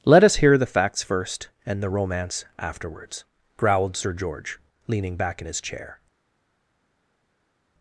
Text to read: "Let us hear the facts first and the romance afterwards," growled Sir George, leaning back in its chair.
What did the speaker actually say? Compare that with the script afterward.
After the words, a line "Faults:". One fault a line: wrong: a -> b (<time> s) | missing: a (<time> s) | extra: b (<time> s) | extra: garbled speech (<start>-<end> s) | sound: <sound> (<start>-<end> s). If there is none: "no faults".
"Let us hear the facts first and the romance afterwards," growled Sir George, leaning back in his chair.
Faults:
wrong: its -> his (5.4 s)